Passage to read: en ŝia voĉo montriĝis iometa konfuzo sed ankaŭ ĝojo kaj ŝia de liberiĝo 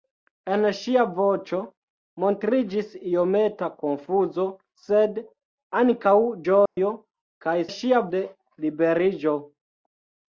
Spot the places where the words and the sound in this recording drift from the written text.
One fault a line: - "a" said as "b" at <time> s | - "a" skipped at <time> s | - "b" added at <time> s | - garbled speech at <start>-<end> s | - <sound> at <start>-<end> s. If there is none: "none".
- dropout at 6.7-6.8 s